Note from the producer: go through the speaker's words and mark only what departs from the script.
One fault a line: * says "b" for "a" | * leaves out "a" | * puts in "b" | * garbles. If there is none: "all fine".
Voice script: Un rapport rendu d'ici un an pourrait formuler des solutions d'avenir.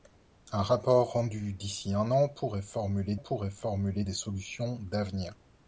* puts in "pourrait formuler"